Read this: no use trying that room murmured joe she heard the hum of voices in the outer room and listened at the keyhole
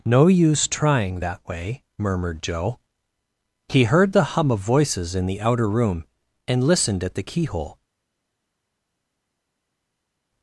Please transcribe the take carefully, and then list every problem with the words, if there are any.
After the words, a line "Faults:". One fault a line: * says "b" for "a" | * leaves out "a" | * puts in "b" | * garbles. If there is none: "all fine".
no use trying that way murmured joe he heard the hum of voices in the outer room and listened at the keyhole
Faults:
* says "way" for "room"
* says "he" for "she"